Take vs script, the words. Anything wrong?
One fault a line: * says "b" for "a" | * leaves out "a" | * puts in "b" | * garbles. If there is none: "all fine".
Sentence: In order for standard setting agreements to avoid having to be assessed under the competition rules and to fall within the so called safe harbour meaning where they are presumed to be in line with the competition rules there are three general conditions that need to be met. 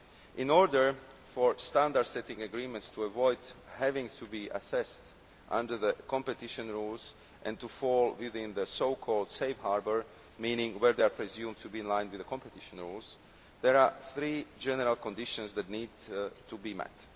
all fine